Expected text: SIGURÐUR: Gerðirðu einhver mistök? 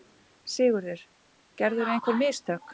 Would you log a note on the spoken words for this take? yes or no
no